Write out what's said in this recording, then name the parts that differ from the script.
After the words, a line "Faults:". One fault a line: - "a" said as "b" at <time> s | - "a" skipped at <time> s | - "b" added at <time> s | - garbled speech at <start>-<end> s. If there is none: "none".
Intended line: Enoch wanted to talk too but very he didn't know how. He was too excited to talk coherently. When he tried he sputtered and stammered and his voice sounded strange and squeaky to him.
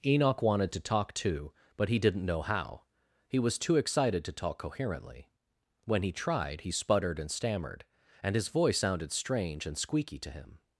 Enoch wanted to talk too but he didn't know how. He was too excited to talk coherently. When he tried he sputtered and stammered and his voice sounded strange and squeaky to him.
Faults:
- "very" skipped at 1.9 s